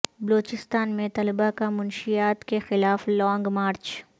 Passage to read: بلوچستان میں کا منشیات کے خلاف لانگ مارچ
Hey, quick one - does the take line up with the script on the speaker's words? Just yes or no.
no